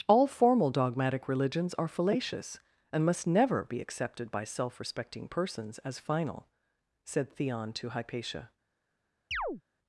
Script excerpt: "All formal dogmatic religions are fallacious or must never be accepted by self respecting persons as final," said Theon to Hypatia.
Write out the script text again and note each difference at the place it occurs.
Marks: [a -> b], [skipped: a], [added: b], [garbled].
"All formal dogmatic religions are fallacious [or -> and] must never be accepted by self respecting persons as final," said Theon to Hypatia.